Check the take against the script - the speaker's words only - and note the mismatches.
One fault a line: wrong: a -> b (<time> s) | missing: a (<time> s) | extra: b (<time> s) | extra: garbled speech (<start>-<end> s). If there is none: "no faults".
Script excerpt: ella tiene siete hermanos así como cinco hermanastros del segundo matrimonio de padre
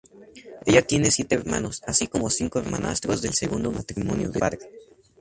no faults